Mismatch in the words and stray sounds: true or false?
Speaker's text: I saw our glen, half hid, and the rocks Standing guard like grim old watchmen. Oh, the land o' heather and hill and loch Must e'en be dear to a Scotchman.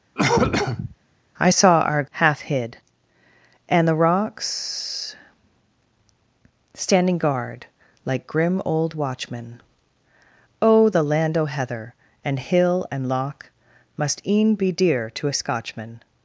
true